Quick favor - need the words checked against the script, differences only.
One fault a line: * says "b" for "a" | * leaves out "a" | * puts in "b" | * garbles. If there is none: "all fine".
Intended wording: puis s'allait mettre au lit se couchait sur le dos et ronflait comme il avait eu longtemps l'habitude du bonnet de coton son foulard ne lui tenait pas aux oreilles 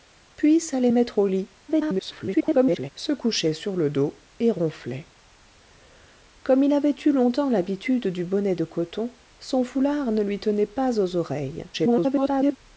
* garbles
* garbles